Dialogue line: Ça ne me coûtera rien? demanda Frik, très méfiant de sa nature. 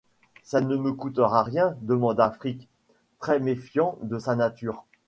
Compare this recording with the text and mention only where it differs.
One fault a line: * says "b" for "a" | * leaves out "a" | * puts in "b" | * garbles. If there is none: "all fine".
all fine